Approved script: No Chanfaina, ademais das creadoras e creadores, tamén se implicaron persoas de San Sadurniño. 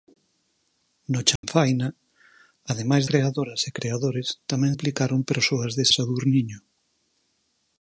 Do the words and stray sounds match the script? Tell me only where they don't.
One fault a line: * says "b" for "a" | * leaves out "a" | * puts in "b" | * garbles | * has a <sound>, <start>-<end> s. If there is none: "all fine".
* has a dropout, 1.4-1.4 s
* leaves out "das"
* leaves out "se"
* leaves out "San"